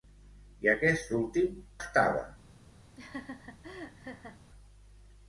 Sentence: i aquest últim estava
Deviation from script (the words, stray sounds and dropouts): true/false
true